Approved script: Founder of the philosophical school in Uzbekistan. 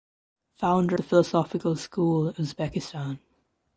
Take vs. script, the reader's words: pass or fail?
fail